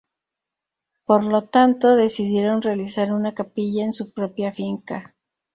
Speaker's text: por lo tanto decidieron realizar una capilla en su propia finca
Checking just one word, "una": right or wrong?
right